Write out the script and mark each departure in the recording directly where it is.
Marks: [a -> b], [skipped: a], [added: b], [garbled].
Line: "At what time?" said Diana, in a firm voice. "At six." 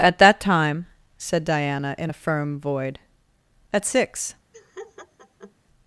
"At [what -> that] time?" said Diana, in a firm [voice. -> void] "At six."